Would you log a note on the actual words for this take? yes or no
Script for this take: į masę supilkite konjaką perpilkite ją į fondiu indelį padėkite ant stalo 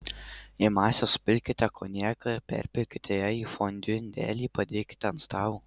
no